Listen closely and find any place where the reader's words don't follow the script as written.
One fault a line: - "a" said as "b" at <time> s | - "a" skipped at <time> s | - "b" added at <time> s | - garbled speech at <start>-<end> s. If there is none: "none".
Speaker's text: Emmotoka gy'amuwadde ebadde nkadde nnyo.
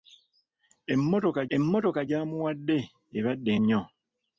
- "emmotoka" added at 1.6 s
- "nkadde" skipped at 3.5 s